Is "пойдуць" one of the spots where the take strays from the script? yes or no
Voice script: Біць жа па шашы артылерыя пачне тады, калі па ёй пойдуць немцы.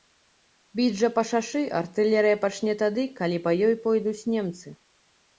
no